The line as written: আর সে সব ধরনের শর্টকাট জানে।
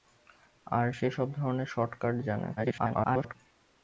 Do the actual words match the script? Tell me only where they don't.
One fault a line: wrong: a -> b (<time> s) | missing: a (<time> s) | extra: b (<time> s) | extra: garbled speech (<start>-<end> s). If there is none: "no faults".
extra: garbled speech (2.6-3.4 s)